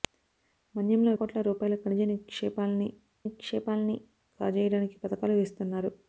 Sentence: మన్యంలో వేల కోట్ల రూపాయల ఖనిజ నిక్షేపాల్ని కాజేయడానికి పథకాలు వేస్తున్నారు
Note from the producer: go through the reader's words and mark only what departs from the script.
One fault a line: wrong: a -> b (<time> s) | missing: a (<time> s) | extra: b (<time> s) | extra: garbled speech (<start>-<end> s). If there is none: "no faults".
missing: వేల (1.1 s)
extra: నిక్షేపాల్ని (3.2 s)